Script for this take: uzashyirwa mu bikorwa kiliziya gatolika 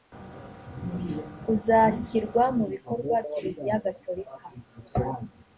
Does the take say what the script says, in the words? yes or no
yes